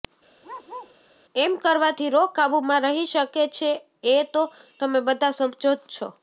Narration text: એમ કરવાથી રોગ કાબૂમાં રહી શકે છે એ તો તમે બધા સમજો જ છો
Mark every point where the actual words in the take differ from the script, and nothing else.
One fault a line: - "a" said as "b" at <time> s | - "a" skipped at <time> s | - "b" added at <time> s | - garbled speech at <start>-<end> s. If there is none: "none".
none